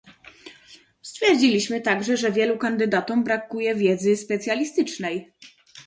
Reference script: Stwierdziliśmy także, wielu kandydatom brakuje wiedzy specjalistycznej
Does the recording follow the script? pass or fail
fail